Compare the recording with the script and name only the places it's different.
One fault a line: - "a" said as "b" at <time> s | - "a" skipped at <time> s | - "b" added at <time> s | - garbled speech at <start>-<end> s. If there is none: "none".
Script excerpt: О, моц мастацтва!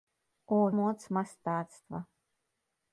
none